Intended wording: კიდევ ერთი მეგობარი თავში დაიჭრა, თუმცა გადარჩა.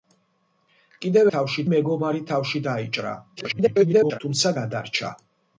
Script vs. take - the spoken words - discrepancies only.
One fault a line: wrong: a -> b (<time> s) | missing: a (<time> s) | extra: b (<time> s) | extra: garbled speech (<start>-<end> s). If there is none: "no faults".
wrong: ერთი -> თავში (1.4 s)
extra: garbled speech (3.4-4.2 s)